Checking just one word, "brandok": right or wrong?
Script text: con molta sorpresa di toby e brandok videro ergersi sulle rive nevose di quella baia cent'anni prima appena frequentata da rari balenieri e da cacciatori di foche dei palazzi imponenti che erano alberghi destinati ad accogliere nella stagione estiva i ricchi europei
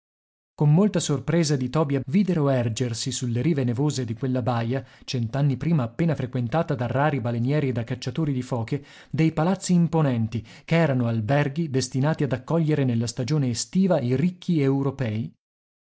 wrong